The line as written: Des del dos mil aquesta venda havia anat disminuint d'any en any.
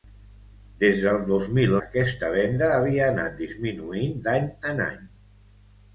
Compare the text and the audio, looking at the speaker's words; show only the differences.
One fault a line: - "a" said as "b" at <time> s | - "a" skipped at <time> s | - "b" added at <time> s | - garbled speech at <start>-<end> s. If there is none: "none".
none